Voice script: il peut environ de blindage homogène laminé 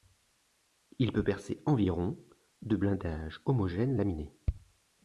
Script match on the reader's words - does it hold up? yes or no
no